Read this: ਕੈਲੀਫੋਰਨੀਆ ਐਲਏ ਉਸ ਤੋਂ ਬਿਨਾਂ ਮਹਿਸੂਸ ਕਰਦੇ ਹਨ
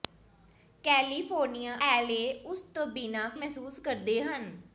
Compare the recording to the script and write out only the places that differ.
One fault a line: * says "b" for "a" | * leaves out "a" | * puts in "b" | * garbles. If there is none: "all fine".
all fine